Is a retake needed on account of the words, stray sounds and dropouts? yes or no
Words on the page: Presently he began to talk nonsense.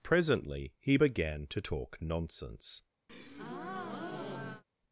yes